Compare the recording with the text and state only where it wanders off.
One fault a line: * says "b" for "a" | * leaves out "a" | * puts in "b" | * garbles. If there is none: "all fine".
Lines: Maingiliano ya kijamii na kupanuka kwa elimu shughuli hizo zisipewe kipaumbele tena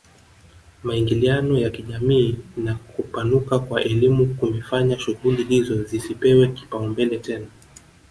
* puts in "kumefanya"